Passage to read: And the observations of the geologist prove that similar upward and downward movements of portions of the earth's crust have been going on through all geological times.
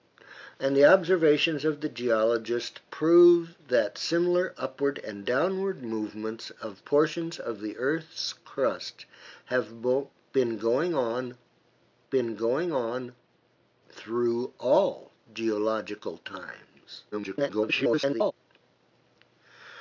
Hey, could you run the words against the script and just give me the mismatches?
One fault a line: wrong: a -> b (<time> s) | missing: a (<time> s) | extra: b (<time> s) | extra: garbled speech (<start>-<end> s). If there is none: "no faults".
extra: been going on (12.1 s)
extra: garbled speech (17.1-18.3 s)